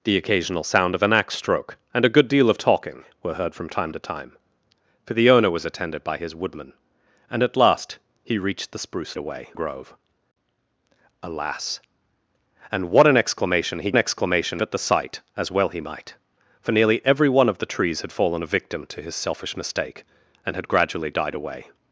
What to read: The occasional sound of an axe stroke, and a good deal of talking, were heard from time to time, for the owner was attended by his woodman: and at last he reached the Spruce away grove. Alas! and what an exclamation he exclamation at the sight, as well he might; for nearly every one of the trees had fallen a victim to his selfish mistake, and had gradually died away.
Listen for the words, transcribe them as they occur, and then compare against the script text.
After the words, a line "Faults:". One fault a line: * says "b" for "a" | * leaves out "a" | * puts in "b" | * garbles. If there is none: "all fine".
The occasional sound of an axe stroke, and a good deal of talking, were heard from time to time, for the owner was attended by his woodman: and at last he reached the Spruce away grove. Alas! and what an exclamation he exclamation at the sight, as well he might; for nearly every one of the trees had fallen a victim to his selfish mistake, and had gradually died away.
Faults:
all fine